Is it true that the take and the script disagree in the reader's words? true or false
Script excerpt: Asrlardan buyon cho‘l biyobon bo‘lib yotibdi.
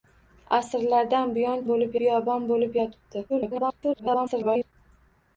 true